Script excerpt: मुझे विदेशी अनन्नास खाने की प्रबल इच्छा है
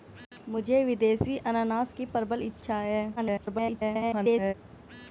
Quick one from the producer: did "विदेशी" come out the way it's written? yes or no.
yes